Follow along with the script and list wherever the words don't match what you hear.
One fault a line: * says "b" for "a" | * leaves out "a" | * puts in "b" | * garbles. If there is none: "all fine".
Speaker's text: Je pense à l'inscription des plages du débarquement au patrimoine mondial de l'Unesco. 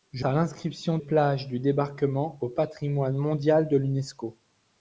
* leaves out "pense"
* leaves out "des"